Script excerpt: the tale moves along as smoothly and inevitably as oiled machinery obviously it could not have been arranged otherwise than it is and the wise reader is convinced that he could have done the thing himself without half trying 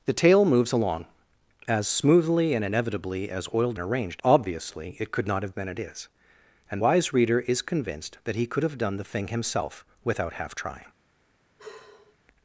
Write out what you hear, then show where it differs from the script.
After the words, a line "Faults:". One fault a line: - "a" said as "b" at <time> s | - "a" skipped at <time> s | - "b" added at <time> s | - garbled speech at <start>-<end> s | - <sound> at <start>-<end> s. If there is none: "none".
the tale moves along as smoothly and inevitably as oiled arranged obviously it could not have than it is and wise reader is convinced that he could have done the thing himself without half trying
Faults:
- "machinery" said as "arranged" at 3.8 s
- "been arranged otherwise" skipped at 5.5 s
- "the" skipped at 6.8 s
- sigh at 11.6-12.2 s